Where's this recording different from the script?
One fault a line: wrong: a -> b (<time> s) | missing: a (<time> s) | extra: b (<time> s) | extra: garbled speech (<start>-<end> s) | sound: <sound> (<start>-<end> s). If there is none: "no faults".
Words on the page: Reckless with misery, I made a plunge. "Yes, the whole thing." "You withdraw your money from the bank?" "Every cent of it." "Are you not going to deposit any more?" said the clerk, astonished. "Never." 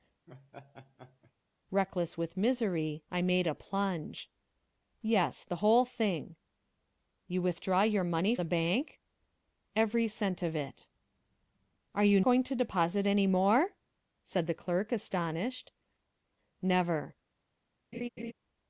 sound: laugh (0.3-1.3 s)
missing: from (8.4 s)
missing: not (12.2 s)
sound: laugh (17.9-18.3 s)